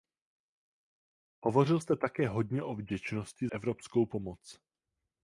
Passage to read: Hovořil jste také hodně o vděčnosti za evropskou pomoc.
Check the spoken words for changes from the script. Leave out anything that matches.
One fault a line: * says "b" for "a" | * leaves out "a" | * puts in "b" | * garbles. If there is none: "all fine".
* leaves out "za"